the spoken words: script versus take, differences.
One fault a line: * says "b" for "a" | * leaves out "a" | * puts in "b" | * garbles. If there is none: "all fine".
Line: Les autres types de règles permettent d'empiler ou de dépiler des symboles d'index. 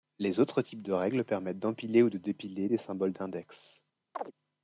all fine